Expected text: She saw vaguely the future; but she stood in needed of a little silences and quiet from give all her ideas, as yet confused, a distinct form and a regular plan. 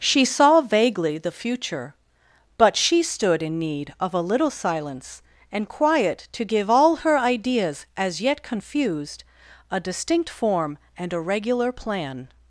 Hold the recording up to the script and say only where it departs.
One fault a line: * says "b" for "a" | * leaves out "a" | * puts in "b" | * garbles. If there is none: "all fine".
* says "need" for "needed"
* says "silence" for "silences"
* says "to" for "from"